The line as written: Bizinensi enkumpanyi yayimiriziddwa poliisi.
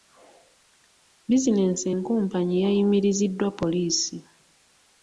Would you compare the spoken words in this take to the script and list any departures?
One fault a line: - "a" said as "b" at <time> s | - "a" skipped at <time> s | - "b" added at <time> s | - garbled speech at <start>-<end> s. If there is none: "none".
none